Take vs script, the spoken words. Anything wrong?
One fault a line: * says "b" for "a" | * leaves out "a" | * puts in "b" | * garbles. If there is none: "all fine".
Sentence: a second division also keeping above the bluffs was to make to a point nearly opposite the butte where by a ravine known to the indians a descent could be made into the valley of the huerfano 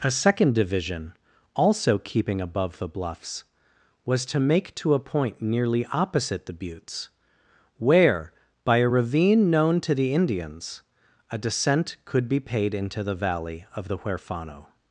* says "buttes" for "butte"
* says "paid" for "made"